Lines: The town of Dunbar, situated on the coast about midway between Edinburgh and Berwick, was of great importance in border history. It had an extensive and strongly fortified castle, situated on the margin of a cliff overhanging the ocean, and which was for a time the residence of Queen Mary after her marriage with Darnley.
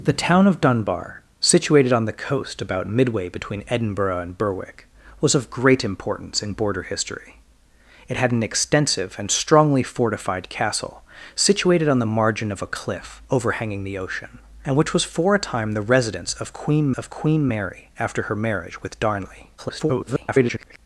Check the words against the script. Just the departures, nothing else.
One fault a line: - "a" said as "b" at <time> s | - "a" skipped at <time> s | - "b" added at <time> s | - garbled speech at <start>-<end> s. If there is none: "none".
- "of Queen" added at 16.9 s
- garbled speech at 19.6-20.8 s